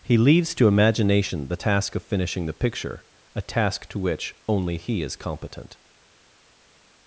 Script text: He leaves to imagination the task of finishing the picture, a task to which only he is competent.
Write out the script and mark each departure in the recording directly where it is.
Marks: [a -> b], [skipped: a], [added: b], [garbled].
He leaves to imagination the task of finishing the picture, a task to which only he is competent.